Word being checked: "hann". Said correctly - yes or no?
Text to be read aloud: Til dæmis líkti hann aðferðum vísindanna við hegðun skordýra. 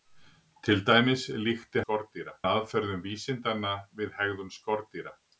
no